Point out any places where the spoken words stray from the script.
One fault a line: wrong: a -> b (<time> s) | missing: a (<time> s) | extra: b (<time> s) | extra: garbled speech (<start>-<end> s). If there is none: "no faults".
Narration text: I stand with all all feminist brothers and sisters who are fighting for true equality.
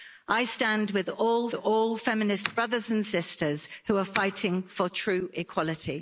no faults